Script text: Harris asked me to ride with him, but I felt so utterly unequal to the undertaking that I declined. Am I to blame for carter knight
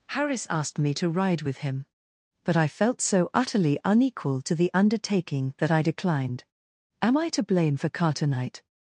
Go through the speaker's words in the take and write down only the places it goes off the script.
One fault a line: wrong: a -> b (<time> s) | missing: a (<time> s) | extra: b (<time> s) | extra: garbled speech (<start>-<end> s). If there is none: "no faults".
no faults